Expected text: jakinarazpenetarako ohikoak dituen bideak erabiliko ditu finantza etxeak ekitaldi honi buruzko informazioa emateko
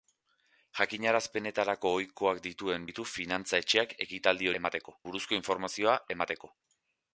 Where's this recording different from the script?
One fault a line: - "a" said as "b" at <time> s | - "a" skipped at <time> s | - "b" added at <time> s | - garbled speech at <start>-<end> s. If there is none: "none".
- "bideak erabiliko" skipped at 2.9 s
- "honi" said as "emateko" at 4.6 s